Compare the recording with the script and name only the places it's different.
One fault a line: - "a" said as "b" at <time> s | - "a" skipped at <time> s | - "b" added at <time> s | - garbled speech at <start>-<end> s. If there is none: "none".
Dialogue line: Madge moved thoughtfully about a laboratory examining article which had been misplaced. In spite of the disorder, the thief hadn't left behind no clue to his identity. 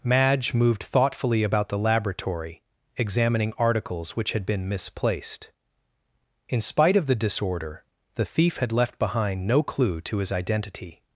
- "a" said as "the" at 1.7 s
- "article" said as "articles" at 3.6 s
- "hadn't" said as "had" at 8.6 s